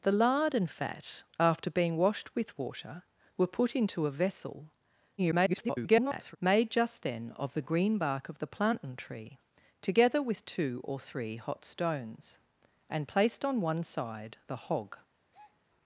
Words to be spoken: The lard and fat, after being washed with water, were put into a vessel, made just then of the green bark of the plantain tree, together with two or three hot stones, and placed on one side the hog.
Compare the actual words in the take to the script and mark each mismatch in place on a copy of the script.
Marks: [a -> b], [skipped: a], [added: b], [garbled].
The lard and fat, after being washed with water, were put into a vessel, [garbled] made just then of the green bark of the plantain tree, together with two or three hot stones, and placed on one side the hog.